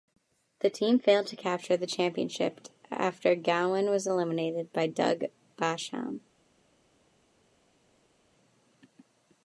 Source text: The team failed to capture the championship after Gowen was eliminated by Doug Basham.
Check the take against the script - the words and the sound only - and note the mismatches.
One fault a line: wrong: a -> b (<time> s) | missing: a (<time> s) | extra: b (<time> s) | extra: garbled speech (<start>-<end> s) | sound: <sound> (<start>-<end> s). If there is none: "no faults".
no faults